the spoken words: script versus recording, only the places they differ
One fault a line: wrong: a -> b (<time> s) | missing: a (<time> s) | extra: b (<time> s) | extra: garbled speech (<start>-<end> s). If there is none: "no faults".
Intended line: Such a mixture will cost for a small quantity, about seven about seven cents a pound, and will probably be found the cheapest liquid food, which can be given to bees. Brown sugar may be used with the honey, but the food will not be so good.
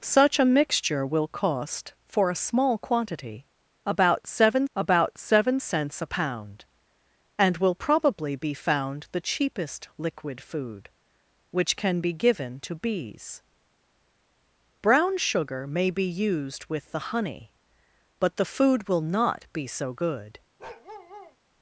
no faults